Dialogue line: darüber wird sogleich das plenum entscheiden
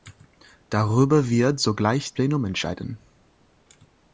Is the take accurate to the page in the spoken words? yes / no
no